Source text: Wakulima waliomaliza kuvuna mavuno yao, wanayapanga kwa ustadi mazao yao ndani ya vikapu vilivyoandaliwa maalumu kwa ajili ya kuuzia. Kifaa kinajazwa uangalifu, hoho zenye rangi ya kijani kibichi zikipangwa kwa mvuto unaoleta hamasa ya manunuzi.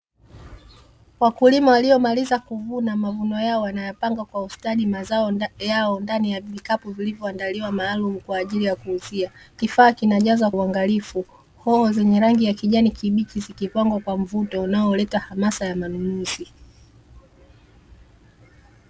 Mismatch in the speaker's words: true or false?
false